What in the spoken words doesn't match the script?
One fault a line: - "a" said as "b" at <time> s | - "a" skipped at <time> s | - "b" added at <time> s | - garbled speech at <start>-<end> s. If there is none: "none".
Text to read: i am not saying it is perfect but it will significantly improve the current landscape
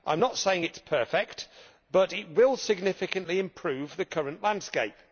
none